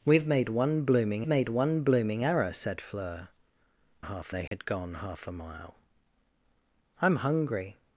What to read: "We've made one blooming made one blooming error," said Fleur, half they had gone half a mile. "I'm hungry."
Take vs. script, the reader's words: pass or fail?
pass